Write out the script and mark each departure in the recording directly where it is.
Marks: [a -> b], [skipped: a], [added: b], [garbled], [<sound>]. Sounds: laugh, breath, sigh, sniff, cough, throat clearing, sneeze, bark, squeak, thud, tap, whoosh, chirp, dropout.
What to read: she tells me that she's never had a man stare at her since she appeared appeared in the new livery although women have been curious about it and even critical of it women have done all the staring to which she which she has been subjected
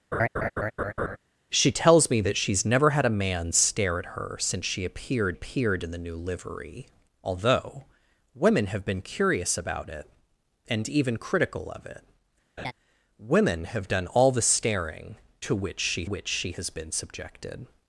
[laugh] she tells me that she's never had a man stare at her since she appeared appeared in the new livery although women have been curious about it and even critical of it [laugh] women have done all the staring to which she which she has been subjected